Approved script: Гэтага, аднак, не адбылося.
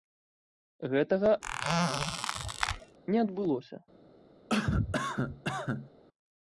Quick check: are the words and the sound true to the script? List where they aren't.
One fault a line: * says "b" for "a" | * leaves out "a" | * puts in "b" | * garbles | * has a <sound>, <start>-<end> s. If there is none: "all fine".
* leaves out "аднак"
* has a squeak, 1.4-3.0 s
* has a cough, 4.5-5.9 s